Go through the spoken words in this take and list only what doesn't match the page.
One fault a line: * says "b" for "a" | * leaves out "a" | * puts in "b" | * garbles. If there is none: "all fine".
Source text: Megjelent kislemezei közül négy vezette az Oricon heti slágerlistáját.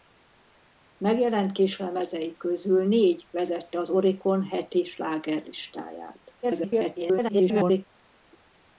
* garbles